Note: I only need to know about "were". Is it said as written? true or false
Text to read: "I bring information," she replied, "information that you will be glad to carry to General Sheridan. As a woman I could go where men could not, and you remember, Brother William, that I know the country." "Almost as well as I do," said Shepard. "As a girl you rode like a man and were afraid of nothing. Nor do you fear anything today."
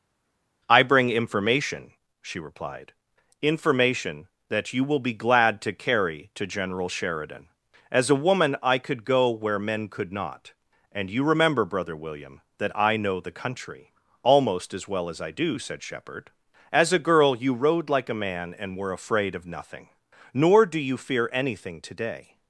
true